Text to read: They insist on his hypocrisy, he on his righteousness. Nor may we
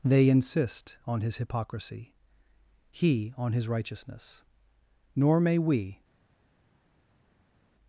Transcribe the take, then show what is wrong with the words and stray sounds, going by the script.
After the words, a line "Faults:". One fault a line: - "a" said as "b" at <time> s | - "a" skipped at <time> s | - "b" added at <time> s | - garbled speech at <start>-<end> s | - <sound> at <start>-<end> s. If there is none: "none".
They insist on his hypocrisy, he on his righteousness. Nor may we
Faults:
none